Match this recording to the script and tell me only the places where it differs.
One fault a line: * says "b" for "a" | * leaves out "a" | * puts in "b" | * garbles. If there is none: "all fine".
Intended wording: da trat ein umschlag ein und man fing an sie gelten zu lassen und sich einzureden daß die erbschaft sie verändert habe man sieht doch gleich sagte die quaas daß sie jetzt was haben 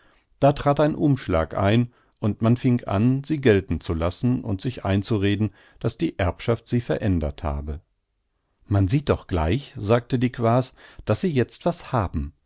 all fine